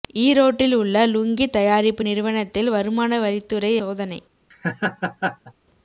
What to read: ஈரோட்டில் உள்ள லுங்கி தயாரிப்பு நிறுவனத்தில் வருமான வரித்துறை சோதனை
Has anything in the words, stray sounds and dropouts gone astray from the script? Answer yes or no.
yes